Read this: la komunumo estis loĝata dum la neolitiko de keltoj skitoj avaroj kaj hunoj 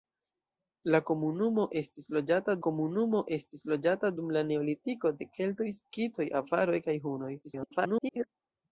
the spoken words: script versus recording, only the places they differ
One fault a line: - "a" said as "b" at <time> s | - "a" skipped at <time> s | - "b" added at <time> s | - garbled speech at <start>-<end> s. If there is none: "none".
- "komunumo estis loĝata" added at 2.7 s
- garbled speech at 7.4-8.3 s